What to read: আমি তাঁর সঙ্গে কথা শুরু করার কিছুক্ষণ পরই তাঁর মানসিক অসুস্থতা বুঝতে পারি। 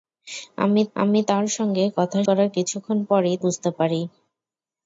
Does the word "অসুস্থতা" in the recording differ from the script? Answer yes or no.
yes